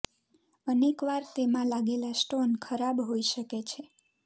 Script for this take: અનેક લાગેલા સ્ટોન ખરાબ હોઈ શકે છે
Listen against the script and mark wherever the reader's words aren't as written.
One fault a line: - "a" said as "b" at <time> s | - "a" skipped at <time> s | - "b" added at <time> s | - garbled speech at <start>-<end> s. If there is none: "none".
- "વાર તેમાં" added at 1.1 s